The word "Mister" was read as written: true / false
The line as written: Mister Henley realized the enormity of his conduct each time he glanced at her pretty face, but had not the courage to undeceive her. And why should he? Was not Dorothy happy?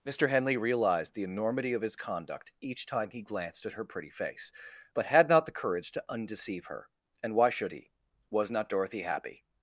true